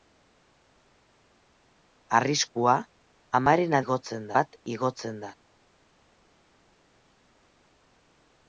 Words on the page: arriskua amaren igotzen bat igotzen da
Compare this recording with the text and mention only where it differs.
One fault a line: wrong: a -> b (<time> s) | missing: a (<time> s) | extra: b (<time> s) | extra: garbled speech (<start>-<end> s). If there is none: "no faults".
no faults